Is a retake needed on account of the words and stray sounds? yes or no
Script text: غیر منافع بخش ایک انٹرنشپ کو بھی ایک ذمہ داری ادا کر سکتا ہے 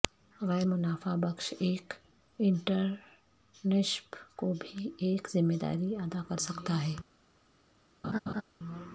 yes